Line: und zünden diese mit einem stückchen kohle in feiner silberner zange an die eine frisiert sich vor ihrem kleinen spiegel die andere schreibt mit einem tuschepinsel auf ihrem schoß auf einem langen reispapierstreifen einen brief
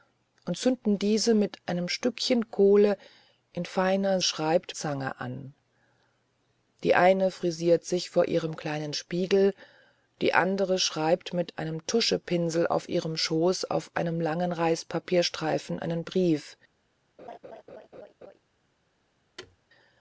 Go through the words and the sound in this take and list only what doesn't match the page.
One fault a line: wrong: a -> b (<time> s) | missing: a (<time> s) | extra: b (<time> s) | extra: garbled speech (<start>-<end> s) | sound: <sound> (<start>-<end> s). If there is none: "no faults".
wrong: silberner -> schreibt (4.2 s)
sound: laugh (17.2-18.4 s)
sound: thud (19.4-19.6 s)